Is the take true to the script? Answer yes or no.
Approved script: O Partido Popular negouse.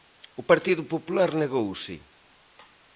yes